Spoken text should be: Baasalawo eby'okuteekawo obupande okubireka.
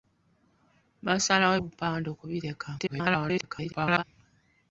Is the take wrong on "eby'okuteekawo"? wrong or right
wrong